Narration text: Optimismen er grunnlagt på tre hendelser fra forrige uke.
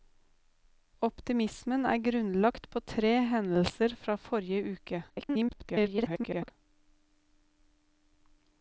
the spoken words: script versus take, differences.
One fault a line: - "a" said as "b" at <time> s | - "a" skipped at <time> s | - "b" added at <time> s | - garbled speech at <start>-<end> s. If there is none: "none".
- garbled speech at 5.1-6.5 s